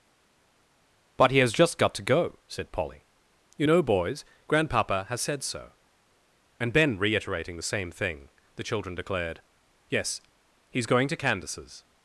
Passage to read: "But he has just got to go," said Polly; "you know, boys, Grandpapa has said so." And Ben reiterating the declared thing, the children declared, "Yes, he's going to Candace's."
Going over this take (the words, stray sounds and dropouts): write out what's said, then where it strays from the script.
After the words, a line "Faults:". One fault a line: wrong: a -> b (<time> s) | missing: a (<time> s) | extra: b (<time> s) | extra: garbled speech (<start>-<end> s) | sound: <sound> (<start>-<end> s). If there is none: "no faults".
"But he has just got to go," said Polly; "you know, boys, Grandpapa has said so." And Ben reiterating the same thing, the children declared, "Yes, he's going to Candace's."
Faults:
wrong: declared -> same (7.6 s)